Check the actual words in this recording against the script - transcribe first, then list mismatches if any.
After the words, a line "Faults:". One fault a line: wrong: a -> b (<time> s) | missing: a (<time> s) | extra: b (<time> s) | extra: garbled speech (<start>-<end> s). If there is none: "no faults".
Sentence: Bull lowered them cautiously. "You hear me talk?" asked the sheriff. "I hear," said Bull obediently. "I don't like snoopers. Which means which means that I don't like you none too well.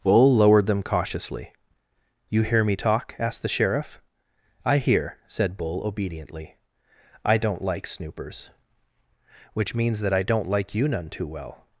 Bull lowered them cautiously. "You hear me talk?" asked the sheriff. "I hear," said Bull obediently. "I don't like snoopers. Which means that I don't like you none too well.
Faults:
missing: which means (10.0 s)